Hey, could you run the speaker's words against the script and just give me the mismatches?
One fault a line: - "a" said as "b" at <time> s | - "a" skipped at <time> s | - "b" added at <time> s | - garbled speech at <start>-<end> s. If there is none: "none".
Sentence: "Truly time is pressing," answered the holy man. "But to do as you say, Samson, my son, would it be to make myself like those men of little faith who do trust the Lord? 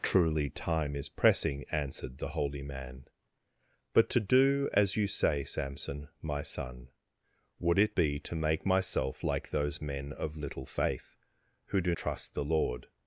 none